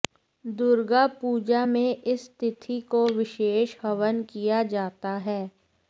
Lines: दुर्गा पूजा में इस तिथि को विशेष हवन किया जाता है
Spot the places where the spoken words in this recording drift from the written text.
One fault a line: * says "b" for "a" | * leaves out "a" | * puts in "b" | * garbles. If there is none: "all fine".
all fine